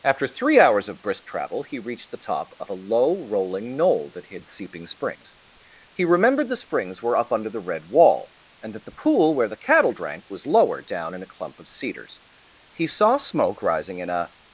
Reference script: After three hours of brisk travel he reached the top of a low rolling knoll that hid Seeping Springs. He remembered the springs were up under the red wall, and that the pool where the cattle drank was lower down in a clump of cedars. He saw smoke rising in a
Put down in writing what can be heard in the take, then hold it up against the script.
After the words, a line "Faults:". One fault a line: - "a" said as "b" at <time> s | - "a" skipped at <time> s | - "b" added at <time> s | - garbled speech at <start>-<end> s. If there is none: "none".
After three hours of brisk travel he reached the top of a low rolling knoll that hid Seeping Springs. He remembered the springs were up under the red wall, and that the pool where the cattle drank was lower down in a clump of cedars. He saw smoke rising in a
Faults:
none